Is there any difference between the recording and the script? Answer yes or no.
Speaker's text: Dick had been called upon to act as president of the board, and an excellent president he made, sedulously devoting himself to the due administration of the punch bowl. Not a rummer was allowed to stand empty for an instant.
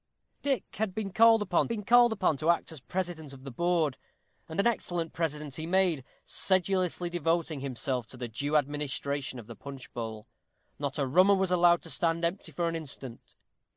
yes